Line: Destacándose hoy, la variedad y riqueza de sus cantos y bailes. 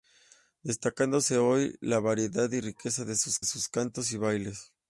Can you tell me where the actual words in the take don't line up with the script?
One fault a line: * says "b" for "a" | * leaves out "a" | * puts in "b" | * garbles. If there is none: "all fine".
* puts in "sus"